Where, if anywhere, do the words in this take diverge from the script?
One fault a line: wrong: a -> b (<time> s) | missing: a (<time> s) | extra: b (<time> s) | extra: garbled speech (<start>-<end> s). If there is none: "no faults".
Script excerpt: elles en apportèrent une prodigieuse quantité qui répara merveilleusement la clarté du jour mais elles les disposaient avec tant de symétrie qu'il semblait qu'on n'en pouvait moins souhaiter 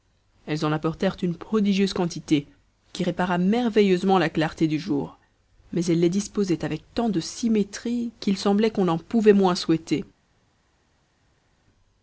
no faults